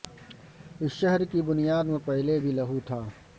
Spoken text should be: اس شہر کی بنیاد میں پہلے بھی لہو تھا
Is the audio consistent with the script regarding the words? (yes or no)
yes